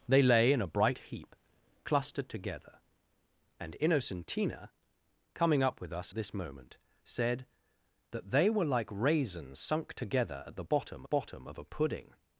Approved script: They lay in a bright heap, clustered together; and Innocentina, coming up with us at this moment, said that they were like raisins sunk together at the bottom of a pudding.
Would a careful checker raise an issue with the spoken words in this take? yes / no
yes